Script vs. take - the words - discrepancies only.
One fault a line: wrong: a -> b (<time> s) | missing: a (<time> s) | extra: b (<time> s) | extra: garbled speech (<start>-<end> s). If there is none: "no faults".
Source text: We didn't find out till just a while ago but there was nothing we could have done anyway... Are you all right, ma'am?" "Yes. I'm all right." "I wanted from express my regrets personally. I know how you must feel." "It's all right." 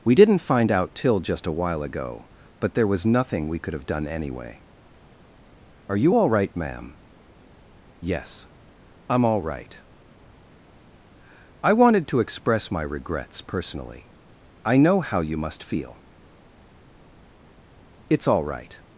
wrong: from -> to (12.1 s)